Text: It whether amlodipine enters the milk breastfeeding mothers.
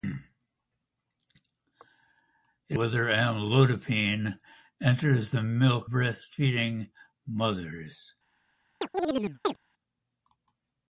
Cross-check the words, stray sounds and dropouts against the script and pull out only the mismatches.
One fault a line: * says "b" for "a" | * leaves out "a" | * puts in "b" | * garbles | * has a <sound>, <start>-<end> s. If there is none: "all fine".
* has a chirp, 8.8-9.6 s